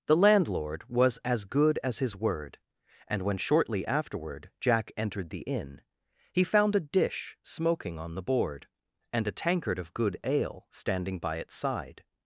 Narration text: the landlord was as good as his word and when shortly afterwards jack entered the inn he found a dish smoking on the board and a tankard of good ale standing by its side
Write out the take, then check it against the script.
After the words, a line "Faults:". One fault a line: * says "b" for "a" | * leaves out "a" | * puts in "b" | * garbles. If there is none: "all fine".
the landlord was as good as his word and when shortly afterward jack entered the inn he found a dish smoking on the board and a tankard of good ale standing by its side
Faults:
* says "afterward" for "afterwards"